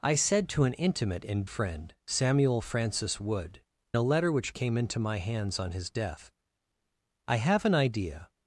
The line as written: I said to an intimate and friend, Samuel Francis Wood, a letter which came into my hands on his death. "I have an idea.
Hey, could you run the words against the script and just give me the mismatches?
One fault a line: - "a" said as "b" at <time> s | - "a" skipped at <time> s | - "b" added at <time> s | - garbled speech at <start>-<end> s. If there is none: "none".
none